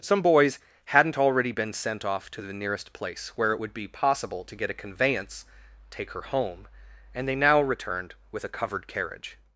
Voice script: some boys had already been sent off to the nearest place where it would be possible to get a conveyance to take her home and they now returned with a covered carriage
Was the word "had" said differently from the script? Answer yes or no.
yes